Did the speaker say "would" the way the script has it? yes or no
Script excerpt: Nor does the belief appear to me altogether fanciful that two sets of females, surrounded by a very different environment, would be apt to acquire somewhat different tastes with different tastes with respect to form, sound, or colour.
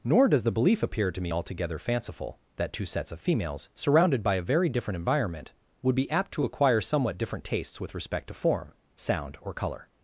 yes